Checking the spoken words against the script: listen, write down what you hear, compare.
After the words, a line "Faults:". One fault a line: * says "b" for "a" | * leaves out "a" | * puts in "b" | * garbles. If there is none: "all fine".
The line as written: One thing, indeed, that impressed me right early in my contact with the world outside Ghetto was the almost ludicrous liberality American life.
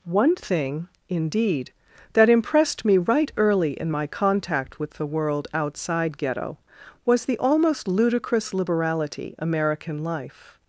One thing, indeed, that impressed me right early in my contact with the world outside Ghetto was the almost ludicrous liberality American life.
Faults:
all fine